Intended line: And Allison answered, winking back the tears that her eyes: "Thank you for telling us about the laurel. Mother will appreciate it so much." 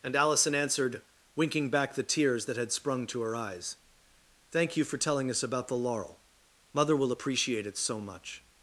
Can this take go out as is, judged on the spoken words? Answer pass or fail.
fail